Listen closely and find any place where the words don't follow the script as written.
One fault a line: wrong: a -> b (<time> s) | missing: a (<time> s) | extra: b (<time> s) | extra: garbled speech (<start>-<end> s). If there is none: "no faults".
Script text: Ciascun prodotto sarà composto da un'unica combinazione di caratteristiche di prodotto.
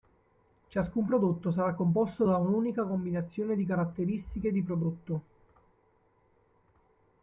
no faults